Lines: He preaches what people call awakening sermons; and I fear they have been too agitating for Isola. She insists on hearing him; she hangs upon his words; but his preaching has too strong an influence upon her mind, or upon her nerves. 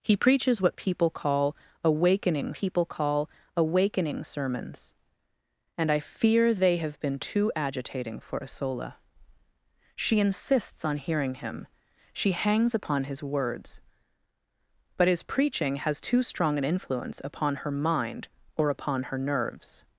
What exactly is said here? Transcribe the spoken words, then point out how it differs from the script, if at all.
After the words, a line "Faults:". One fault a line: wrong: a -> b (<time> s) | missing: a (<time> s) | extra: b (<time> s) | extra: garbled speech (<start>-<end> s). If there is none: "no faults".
He preaches what people call awakening people call awakening sermons; and I fear they have been too agitating for Isola. She insists on hearing him; she hangs upon his words; but his preaching has too strong an influence upon her mind, or upon her nerves.
Faults:
extra: people call awakening (2.5 s)